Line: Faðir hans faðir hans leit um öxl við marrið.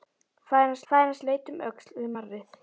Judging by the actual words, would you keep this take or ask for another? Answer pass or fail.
pass